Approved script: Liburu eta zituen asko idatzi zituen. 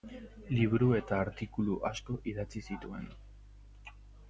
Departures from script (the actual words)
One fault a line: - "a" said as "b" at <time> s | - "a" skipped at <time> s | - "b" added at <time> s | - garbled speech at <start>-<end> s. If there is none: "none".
- "zituen" said as "artikulu" at 1.2 s